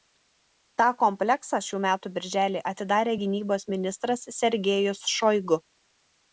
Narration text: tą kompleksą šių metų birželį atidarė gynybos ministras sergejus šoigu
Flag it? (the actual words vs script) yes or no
no